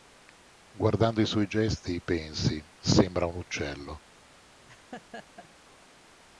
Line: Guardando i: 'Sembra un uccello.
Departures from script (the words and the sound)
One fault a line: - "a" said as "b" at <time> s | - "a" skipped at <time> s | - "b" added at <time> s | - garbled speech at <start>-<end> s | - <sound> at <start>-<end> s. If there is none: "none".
- "suoi gesti pensi" added at 1.3 s
- laugh at 4.7-5.5 s